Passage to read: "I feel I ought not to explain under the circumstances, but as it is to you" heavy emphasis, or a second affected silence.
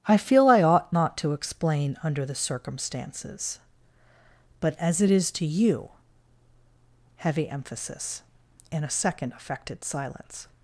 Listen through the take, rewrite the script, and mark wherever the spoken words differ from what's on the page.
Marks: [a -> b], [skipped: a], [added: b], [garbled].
"I feel I ought not to explain under the circumstances, but as it is to you" heavy emphasis, [or -> and] a second affected silence.